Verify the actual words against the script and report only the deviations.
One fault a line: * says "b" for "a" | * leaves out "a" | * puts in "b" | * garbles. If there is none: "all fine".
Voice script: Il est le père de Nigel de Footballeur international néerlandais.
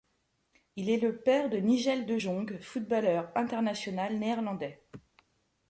* puts in "Jong"